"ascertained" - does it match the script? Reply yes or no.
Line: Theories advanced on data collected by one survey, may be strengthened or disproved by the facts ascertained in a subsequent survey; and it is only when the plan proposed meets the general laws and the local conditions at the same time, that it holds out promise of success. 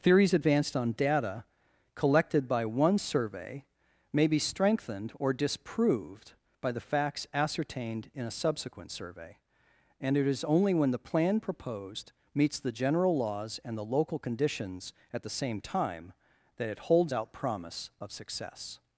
yes